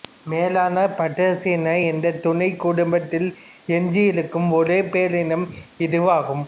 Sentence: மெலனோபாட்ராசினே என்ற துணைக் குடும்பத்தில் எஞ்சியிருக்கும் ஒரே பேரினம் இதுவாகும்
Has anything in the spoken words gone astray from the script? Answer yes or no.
no